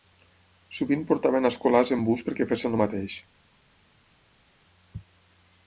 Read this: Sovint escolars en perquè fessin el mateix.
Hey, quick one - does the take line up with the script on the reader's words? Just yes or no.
no